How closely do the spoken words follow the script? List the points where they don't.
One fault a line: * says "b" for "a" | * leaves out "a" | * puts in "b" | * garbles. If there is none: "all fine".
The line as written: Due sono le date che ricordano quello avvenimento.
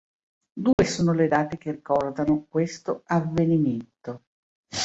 * says "questo" for "quello"